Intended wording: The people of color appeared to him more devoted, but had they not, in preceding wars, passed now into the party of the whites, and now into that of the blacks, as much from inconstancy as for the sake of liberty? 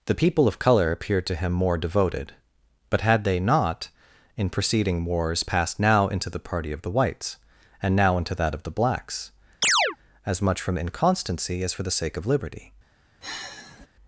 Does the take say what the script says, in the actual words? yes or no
yes